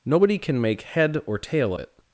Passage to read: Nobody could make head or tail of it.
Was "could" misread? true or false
true